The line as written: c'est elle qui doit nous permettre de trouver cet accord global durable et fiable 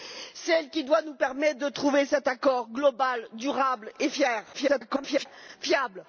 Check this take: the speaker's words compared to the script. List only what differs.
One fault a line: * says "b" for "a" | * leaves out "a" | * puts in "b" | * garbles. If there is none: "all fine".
* garbles